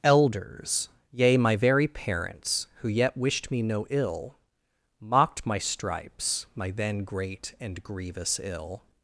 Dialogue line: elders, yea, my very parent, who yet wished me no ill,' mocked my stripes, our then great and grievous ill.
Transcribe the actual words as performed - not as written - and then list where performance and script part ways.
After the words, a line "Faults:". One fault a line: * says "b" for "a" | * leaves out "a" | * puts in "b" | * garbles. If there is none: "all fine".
elders, yea, my very parents, who yet wished me no ill,' mocked my stripes, my then great and grievous ill.
Faults:
* says "parents" for "parent"
* says "my" for "our"